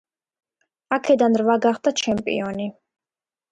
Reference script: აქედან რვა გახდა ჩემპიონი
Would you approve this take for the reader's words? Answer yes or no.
yes